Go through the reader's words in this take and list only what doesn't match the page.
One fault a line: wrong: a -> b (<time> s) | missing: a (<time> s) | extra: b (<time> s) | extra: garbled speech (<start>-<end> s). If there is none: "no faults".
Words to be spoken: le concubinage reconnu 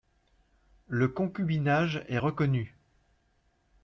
extra: est (2.1 s)